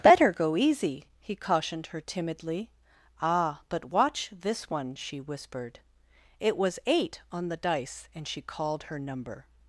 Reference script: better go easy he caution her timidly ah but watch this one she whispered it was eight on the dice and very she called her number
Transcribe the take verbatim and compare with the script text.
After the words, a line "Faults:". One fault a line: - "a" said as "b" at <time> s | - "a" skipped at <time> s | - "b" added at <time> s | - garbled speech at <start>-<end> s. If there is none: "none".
better go easy he cautioned her timidly ah but watch this one she whispered it was eight on the dice and she called her number
Faults:
- "caution" said as "cautioned" at 1.4 s
- "very" skipped at 8.3 s